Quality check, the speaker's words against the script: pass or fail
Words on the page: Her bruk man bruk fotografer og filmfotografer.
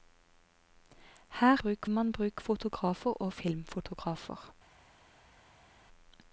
pass